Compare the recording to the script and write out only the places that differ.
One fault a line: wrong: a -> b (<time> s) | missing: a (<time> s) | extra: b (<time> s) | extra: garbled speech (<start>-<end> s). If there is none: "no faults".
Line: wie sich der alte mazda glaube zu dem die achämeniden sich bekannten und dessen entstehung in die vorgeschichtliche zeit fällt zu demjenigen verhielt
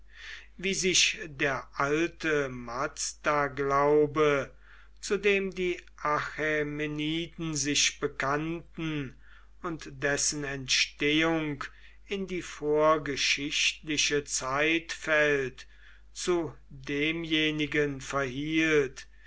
no faults